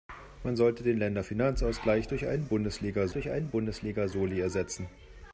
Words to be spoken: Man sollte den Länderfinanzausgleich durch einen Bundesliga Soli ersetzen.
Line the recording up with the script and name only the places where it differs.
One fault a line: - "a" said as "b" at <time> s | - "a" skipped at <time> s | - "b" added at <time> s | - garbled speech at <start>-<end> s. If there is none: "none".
- "durch einen Bundesliga" added at 3.1 s